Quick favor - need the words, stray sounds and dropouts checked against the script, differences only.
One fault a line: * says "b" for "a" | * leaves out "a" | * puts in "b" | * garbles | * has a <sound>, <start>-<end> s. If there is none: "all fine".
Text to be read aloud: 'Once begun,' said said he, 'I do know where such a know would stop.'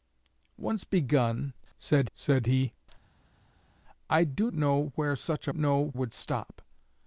all fine